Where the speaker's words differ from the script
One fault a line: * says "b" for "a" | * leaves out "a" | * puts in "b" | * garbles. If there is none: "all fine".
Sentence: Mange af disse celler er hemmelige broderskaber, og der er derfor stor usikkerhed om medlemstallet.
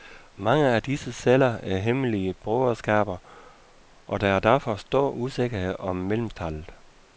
all fine